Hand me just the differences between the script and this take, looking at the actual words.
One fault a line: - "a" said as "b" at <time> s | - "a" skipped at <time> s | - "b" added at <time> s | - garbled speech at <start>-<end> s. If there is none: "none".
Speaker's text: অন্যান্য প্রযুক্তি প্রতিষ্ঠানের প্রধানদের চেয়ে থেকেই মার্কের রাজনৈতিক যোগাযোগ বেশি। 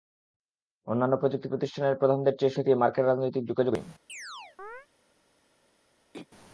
none